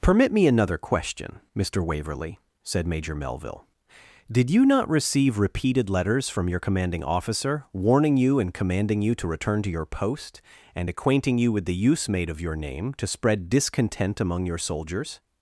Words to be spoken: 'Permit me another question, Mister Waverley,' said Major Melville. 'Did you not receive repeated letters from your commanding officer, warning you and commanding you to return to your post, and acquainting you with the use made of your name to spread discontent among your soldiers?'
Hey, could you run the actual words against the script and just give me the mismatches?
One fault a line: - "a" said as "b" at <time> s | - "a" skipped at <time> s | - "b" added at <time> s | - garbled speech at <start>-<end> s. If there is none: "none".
none